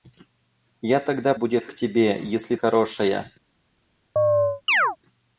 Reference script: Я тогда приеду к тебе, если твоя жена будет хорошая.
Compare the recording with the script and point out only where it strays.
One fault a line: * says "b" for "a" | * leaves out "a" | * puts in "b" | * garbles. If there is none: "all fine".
* says "будет" for "приеду"
* leaves out "твоя жена будет"